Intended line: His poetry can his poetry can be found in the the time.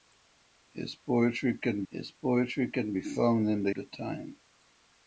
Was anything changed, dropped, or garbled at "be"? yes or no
no